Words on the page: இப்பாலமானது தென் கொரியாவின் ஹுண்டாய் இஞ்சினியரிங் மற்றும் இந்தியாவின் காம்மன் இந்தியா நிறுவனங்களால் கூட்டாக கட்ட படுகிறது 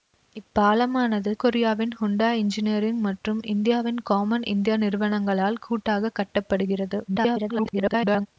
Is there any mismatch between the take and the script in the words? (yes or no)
yes